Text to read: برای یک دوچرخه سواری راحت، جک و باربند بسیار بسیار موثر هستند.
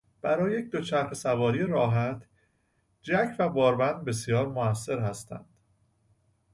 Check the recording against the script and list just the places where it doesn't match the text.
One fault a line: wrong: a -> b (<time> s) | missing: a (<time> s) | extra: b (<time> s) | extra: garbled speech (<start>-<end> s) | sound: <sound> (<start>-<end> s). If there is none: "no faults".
missing: بسیار (4.5 s)